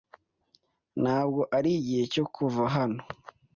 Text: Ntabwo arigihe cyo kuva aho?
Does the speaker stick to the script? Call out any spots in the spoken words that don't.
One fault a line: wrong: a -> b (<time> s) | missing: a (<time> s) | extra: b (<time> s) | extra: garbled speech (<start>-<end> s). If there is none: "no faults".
wrong: aho -> hano (2.7 s)